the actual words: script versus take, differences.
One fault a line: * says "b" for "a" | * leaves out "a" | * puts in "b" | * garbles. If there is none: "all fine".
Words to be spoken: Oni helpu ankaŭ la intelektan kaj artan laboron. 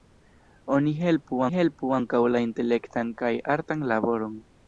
* puts in "helpu"